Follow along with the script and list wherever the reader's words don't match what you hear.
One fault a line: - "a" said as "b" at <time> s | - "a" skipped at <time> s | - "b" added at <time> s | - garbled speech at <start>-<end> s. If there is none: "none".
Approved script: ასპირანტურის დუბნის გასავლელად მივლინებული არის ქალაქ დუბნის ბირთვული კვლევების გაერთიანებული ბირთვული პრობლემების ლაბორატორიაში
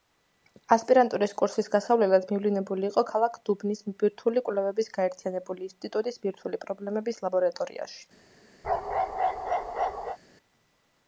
- "დუბნის" said as "კურსის" at 1.4 s
- "არის" said as "იყო" at 2.9 s
- "ინსტიტუტის" added at 5.7 s